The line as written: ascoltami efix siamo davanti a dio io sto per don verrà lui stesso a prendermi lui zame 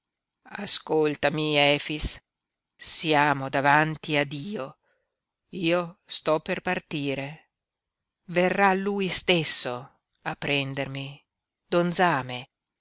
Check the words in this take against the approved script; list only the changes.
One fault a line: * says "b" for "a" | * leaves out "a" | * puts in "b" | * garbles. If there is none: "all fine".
* says "partire" for "don"
* says "don" for "lui"